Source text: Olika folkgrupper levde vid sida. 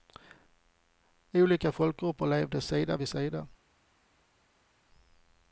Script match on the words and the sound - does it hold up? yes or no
no